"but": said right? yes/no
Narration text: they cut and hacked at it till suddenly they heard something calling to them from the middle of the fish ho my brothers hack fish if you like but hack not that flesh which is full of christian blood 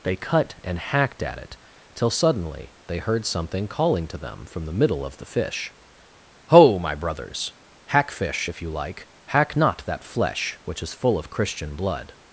no